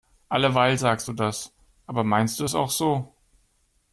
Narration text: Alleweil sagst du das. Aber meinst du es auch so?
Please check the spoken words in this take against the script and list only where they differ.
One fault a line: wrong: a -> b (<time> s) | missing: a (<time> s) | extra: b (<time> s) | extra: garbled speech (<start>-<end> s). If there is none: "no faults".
no faults